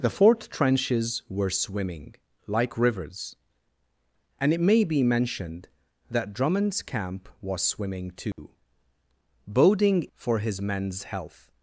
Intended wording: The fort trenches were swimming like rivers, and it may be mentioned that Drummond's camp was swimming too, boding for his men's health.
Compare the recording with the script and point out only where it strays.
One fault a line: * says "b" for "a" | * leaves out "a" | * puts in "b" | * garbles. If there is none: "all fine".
all fine